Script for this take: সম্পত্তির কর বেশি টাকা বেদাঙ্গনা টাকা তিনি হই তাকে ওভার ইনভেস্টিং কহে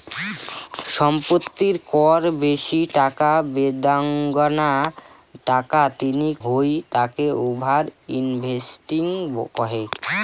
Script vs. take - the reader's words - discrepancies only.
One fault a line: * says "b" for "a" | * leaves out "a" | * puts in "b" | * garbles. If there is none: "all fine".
all fine